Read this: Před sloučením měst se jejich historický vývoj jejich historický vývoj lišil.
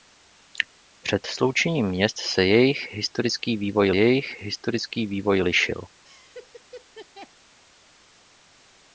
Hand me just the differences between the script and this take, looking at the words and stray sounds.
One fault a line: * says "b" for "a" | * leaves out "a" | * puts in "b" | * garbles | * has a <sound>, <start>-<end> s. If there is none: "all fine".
* has a laugh, 6.0-7.3 s